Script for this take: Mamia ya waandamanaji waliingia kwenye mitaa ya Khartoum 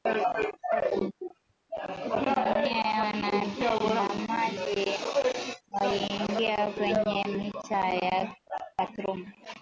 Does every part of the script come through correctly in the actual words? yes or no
yes